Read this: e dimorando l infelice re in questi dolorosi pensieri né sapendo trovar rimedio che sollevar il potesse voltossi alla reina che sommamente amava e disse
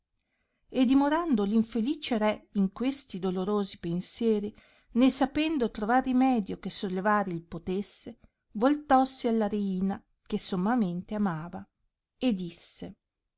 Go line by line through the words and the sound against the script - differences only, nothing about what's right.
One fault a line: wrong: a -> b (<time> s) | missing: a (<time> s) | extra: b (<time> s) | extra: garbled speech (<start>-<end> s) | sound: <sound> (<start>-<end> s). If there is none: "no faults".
no faults